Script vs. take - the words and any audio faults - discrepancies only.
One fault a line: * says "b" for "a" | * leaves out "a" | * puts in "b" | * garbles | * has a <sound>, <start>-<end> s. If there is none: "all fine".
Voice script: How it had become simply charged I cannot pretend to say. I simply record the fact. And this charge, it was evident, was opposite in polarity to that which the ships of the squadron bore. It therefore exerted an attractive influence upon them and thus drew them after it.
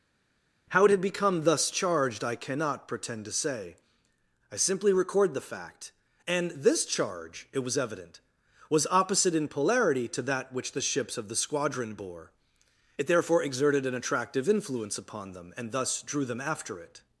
* says "thus" for "simply"